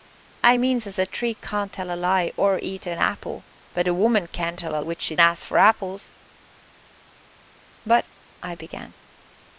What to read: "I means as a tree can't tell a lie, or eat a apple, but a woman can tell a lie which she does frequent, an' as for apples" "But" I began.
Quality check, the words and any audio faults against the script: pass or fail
fail